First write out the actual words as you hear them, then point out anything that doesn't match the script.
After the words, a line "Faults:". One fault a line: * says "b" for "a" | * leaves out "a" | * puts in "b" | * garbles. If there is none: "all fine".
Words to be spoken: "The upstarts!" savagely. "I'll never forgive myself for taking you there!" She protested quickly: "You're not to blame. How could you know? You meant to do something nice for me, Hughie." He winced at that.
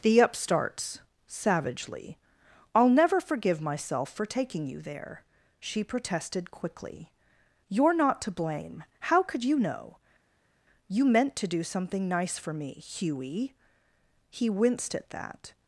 "The upstarts!" savagely. "I'll never forgive myself for taking you there!" She protested quickly: "You're not to blame. How could you know? You meant to do something nice for me, Hughie." He winced at that.
Faults:
all fine